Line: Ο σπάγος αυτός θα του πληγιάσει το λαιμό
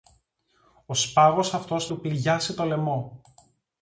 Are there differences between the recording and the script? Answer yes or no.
yes